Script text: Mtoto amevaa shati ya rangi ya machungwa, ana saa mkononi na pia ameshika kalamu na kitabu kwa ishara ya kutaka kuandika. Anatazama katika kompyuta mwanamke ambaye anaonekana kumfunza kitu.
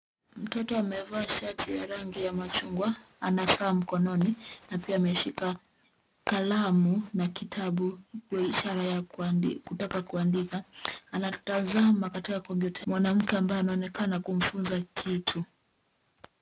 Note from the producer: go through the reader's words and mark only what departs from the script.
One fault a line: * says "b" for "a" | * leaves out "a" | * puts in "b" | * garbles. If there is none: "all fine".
all fine